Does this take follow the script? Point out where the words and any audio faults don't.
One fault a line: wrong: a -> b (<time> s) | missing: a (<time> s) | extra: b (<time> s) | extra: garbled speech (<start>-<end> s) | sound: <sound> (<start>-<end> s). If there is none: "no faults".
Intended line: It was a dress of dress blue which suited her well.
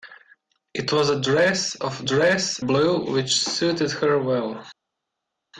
no faults